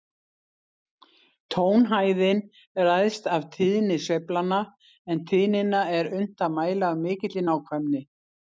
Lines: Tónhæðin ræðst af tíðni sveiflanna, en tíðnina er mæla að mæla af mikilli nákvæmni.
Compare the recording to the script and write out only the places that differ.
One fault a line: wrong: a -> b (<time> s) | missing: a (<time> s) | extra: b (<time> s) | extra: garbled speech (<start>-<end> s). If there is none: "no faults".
wrong: mæla -> unnt (6.2 s)